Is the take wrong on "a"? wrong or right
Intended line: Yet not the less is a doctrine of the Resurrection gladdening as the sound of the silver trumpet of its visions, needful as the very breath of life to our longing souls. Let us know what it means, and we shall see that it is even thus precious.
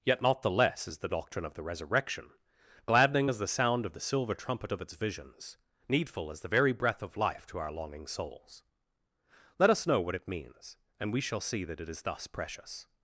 wrong